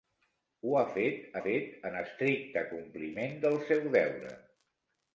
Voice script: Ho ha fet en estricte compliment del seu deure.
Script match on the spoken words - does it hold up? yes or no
no